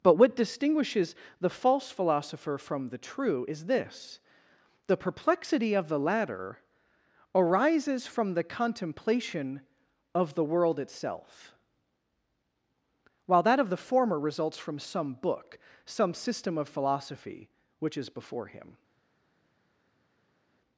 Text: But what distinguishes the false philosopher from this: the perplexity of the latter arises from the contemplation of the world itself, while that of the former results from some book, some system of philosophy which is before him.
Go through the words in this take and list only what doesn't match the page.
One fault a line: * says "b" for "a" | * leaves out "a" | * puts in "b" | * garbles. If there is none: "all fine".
* puts in "the true is"